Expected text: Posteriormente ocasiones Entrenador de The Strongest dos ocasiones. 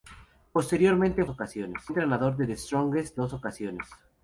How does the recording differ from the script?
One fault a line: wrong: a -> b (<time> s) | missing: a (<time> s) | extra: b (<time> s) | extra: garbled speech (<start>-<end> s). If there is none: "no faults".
no faults